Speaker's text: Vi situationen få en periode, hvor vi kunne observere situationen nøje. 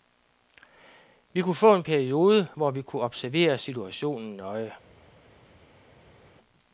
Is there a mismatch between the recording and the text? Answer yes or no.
yes